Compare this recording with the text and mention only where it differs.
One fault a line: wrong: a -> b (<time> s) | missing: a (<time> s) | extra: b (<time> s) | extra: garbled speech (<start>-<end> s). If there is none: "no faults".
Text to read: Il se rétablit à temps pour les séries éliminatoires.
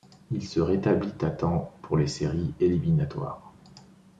no faults